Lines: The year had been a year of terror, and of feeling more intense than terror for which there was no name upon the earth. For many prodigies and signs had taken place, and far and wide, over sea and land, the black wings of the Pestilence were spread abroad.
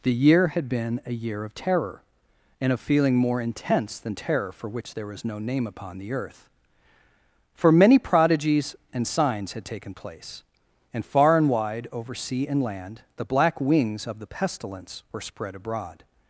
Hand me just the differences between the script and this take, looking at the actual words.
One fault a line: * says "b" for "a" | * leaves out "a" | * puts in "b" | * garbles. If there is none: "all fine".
all fine